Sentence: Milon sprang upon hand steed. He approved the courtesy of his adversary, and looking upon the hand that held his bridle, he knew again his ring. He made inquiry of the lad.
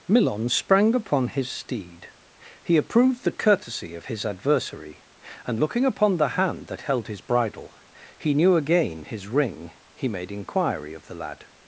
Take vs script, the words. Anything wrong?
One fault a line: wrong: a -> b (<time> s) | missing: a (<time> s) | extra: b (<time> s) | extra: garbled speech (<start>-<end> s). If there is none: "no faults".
wrong: hand -> his (1.3 s)